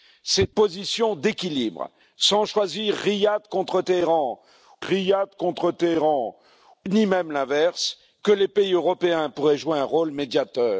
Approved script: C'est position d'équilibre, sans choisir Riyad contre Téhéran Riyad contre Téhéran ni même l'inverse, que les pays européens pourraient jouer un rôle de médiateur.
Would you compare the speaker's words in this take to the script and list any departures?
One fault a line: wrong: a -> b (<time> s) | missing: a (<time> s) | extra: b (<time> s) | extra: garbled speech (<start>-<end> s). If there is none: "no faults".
no faults